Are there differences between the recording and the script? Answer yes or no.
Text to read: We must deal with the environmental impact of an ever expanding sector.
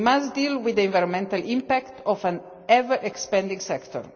no